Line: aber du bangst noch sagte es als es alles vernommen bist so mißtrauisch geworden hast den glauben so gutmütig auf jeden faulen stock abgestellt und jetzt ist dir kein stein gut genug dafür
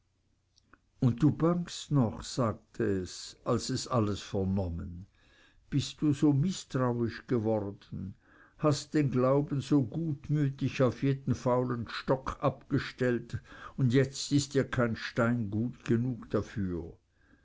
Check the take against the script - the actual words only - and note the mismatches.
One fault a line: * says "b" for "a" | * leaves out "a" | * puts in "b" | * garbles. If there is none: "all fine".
* says "und" for "aber"
* puts in "du"